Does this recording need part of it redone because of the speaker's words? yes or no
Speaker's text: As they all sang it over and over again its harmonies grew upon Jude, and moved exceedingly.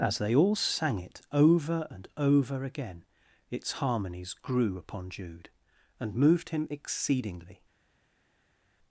yes